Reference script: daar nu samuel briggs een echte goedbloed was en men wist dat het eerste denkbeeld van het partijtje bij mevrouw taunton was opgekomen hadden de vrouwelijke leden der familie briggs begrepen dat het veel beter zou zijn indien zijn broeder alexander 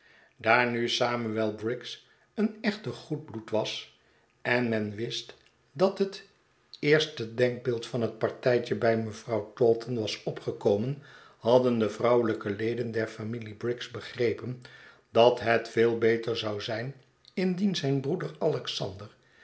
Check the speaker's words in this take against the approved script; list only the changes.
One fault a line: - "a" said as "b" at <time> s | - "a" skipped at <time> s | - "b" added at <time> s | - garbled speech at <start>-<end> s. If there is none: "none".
none